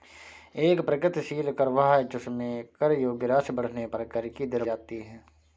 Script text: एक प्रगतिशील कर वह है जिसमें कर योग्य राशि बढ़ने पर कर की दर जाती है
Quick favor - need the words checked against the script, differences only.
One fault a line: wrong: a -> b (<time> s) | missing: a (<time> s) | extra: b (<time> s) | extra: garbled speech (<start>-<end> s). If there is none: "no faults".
no faults